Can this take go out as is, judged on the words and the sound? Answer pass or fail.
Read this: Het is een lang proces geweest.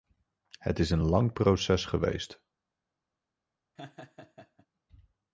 fail